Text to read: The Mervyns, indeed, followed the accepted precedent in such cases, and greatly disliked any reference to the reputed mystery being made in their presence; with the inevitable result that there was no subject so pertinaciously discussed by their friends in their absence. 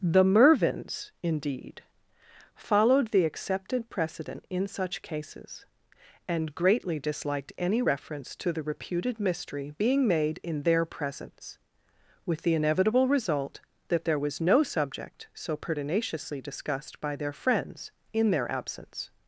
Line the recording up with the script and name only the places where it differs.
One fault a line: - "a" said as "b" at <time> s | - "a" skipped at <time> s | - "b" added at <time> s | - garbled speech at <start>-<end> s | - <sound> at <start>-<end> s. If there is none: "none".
none